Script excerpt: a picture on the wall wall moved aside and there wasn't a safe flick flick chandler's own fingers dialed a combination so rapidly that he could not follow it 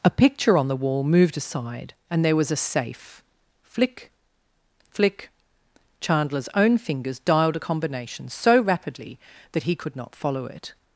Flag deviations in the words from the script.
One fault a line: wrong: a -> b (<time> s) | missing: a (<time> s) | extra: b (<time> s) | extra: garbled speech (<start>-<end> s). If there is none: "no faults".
missing: wall (1.0 s)
wrong: wasn't -> was (2.4 s)